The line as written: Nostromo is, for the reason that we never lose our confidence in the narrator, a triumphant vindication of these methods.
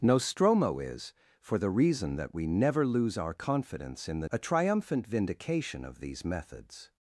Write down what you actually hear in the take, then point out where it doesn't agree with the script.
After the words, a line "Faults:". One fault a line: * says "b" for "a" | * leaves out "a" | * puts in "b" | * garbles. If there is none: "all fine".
Nostromo is, for the reason that we never lose our confidence in the a triumphant vindication of these methods.
Faults:
* leaves out "narrator"